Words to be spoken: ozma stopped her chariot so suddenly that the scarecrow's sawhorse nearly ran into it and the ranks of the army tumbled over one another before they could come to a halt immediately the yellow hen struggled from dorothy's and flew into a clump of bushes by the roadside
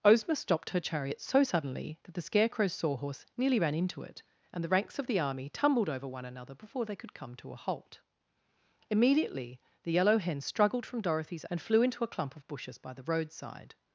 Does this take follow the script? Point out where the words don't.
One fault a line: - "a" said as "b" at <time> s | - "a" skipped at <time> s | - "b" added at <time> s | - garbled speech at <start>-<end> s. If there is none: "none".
none